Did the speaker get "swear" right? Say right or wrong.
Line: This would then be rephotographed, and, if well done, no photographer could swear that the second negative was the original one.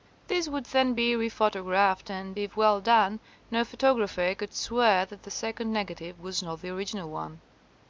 right